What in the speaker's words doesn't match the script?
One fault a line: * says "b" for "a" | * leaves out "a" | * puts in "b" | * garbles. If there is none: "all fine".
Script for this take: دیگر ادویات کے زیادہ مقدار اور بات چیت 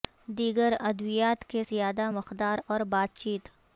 all fine